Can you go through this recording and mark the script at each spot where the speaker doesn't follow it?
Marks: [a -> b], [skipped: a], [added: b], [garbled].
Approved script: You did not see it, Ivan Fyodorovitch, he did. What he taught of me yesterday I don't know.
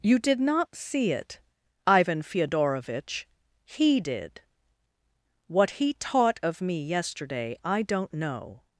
You did not see it, Ivan Fyodorovitch, he did. What he taught of me yesterday I don't know.